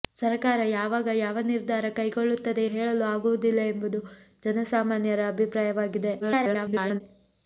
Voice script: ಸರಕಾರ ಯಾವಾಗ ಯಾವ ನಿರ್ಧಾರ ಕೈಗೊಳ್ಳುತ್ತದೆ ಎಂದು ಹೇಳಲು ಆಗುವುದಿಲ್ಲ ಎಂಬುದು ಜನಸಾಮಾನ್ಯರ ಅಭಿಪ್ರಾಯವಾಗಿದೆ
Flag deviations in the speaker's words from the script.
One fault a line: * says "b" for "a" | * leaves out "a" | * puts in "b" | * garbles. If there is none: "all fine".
* leaves out "ಎಂದು"
* garbles